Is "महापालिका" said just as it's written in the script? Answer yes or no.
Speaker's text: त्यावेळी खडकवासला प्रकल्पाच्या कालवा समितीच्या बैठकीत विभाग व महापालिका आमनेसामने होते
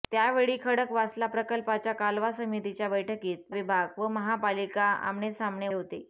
yes